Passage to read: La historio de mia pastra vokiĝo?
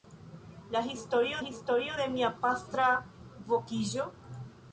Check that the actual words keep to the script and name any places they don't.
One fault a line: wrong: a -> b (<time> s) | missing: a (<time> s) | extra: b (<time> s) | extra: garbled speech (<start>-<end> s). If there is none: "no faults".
extra: historio (1.4 s)